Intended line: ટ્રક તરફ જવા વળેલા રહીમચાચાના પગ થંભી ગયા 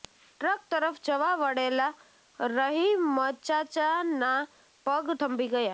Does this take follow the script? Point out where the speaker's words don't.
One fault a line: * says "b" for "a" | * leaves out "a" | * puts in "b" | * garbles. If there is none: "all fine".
all fine